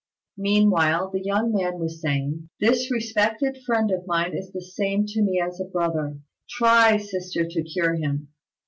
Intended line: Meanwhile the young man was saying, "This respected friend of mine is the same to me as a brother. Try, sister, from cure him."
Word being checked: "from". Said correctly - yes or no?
no